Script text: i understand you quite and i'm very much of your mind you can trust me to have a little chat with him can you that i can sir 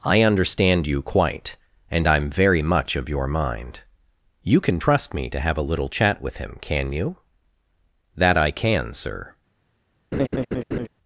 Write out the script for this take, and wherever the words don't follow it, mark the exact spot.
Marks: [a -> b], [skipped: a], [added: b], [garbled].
i understand you quite and i'm very much of your mind you can trust me to have a little chat with him can you that i can sir